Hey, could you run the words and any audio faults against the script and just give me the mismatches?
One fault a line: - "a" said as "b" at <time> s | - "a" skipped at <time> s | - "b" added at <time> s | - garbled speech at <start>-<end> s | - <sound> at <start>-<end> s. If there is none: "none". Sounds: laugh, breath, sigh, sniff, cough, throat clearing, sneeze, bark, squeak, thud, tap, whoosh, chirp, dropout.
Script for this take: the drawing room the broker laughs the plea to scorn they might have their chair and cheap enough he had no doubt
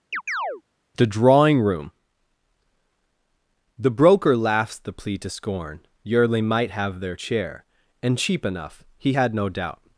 - chirp at 0.1-0.6 s
- "they" said as "yearly" at 6.0 s